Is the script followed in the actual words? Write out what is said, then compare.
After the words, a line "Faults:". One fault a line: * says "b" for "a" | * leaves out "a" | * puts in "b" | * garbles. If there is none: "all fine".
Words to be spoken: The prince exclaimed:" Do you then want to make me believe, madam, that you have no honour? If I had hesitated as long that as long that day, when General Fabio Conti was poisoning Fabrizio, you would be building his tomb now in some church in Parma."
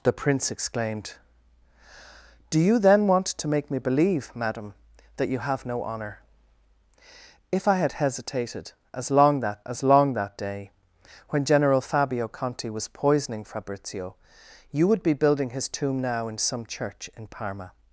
The prince exclaimed:" Do you then want to make me believe, madam, that you have no honour? If I had hesitated as long that as long that day, when General Fabio Conti was poisoning Fabrizio, you would be building his tomb now in some church in Parma."
Faults:
all fine